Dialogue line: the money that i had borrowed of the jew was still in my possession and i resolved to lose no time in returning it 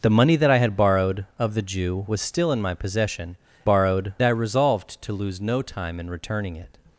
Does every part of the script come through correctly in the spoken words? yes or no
no